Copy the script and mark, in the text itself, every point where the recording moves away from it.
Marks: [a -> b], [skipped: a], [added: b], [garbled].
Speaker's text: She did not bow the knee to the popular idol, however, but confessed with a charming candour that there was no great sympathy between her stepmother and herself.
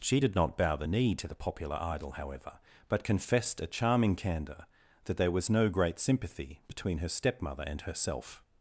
She did not bow the knee to the popular idol, however, but confessed [skipped: with] a charming candour that there was no great sympathy between her stepmother and herself.